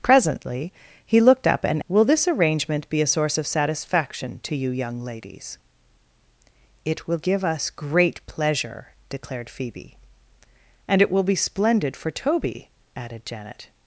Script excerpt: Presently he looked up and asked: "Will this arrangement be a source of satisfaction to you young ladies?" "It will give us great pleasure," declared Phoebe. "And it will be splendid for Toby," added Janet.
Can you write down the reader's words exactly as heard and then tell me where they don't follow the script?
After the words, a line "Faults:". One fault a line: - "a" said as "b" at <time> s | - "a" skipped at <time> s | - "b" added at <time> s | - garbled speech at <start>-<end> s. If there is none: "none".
Presently he looked up and: "Will this arrangement be a source of satisfaction to you young ladies?" "It will give us great pleasure," declared Phoebe. "And it will be splendid for Toby," added Janet.
Faults:
- "asked" skipped at 1.8 s